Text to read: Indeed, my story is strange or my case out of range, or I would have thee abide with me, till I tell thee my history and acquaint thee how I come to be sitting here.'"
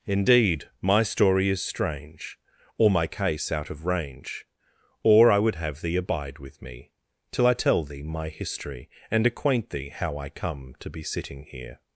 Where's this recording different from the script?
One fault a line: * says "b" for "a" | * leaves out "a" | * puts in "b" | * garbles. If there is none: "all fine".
all fine